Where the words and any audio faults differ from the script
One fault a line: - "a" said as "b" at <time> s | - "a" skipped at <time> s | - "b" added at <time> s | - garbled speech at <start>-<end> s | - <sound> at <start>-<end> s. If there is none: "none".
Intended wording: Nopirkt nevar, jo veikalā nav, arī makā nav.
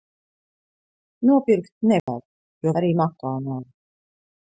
- dropout at 2.0-2.1 s
- "veikalā nav" skipped at 2.8 s